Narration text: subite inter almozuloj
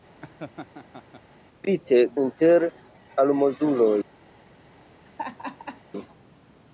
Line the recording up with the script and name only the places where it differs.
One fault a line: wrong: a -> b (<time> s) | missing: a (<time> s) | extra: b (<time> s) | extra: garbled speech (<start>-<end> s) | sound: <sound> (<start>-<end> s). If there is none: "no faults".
sound: laugh (0.2-1.2 s)
sound: laugh (5.1-5.8 s)